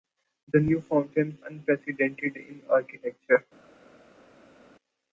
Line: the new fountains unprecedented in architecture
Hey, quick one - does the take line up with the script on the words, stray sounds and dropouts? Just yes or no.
yes